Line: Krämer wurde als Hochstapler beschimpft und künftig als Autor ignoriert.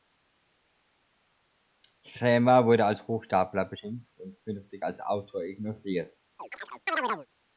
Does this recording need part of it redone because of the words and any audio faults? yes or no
yes